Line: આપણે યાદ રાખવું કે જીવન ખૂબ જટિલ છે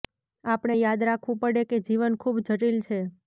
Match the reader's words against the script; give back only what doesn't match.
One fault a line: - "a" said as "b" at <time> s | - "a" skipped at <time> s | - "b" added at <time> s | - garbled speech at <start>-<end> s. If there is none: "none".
- "પડે" added at 1.4 s